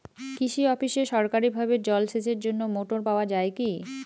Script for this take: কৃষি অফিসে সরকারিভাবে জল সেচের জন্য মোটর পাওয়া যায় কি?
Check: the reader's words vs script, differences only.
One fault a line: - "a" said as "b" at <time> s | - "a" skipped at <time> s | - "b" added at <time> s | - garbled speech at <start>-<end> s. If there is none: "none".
none